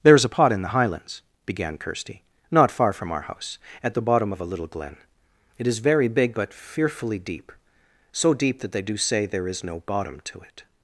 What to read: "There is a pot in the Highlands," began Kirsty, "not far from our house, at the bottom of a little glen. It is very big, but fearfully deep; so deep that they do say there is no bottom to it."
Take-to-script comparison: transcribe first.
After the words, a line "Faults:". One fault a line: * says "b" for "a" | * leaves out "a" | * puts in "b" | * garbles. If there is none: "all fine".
"There is a pot in the Highlands," began Kirsty, "not far from our house, at the bottom of a little glen. It is very big, but fearfully deep; so deep that they do say there is no bottom to it."
Faults:
all fine